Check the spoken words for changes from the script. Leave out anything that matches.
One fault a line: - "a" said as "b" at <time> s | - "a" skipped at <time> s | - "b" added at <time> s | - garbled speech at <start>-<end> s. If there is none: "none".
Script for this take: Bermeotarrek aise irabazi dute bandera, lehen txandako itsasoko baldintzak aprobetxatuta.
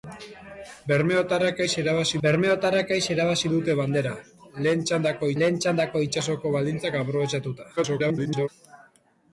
- "bermeotarrek aise irabazi" added at 2.3 s
- "lehen txandako" added at 5.4 s
- garbled speech at 7.8-8.5 s